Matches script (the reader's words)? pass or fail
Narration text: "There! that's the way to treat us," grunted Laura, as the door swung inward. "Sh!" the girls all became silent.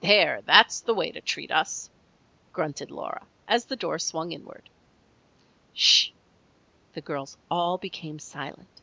pass